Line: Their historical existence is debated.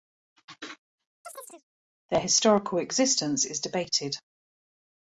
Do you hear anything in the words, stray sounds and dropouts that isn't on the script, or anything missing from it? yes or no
yes